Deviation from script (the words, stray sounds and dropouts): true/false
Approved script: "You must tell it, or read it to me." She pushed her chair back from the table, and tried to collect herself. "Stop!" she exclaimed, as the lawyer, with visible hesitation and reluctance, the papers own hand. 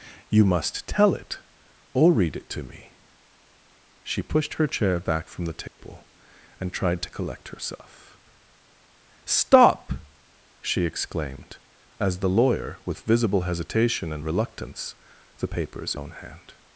true